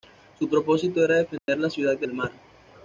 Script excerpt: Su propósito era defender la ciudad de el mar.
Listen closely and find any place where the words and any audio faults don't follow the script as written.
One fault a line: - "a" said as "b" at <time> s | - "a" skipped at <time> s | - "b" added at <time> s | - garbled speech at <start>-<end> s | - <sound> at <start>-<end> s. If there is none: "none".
- dropout at 1.4-1.5 s